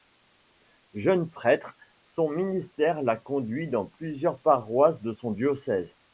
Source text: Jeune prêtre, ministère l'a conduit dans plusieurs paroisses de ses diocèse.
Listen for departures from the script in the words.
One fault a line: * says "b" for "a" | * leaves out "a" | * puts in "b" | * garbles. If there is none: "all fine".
* puts in "son"
* says "son" for "ses"